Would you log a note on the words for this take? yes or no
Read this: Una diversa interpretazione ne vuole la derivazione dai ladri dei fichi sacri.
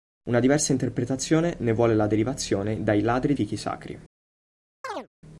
yes